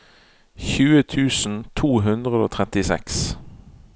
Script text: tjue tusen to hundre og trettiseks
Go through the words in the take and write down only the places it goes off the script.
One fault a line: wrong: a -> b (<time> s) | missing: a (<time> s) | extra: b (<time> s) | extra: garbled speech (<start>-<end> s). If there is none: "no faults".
no faults